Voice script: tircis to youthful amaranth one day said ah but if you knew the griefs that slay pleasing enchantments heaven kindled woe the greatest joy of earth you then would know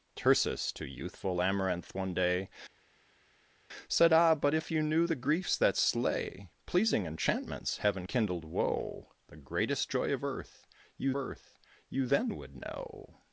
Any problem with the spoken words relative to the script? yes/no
yes